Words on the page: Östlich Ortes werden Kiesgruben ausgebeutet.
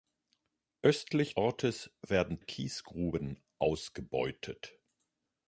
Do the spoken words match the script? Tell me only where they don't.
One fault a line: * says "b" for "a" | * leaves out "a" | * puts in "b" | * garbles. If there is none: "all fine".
all fine